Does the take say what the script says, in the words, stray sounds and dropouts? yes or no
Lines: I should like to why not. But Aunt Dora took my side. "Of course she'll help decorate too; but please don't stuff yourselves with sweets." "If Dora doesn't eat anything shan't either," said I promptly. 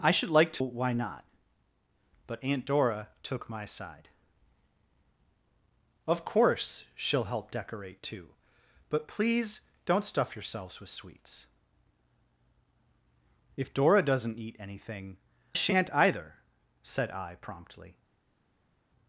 yes